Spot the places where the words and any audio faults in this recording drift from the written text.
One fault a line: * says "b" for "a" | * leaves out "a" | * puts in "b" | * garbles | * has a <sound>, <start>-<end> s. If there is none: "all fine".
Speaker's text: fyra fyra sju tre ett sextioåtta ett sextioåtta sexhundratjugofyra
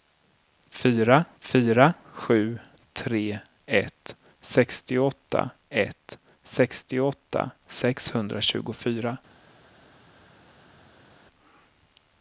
all fine